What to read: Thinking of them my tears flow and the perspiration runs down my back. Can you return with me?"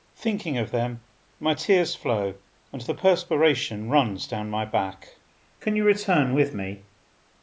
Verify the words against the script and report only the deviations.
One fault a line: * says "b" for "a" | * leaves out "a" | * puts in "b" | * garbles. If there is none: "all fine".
all fine